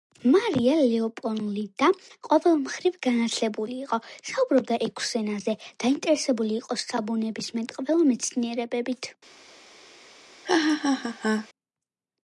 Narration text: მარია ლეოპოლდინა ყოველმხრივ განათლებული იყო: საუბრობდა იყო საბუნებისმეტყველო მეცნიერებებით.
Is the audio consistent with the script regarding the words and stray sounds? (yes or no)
no